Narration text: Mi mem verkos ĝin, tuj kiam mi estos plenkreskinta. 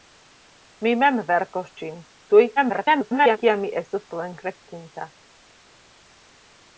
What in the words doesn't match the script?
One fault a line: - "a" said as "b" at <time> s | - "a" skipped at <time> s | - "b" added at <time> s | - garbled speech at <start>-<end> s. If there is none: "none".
- garbled speech at 2.6-3.4 s